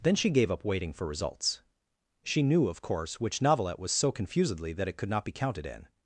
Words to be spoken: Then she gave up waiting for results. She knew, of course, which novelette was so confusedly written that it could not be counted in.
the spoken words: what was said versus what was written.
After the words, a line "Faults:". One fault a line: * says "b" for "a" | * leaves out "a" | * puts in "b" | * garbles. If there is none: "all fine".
Then she gave up waiting for results. She knew, of course, which novelette was so confusedly that it could not be counted in.
Faults:
* leaves out "written"